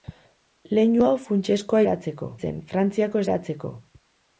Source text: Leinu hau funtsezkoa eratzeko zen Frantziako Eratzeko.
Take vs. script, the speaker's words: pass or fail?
pass